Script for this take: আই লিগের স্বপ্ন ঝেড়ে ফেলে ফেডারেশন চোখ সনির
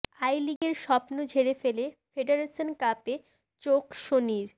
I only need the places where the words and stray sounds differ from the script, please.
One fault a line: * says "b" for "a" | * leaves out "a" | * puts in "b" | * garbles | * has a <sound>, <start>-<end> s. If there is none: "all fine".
* has a dropout, 0.6-0.6 s
* puts in "কাপে"